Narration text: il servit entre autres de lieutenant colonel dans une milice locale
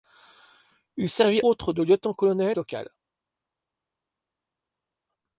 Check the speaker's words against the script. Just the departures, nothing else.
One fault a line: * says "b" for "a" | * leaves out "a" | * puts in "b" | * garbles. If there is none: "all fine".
* leaves out "entre"
* leaves out "dans une milice"